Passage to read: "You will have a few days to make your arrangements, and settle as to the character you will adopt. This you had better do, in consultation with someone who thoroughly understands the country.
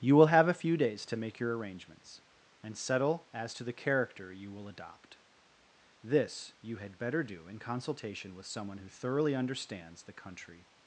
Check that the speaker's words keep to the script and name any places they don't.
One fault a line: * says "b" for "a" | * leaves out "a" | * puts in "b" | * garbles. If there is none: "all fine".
all fine